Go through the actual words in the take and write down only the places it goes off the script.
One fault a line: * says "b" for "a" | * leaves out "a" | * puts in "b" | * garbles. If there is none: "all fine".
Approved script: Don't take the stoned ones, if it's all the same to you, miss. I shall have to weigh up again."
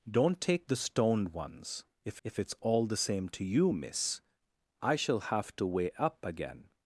* puts in "if"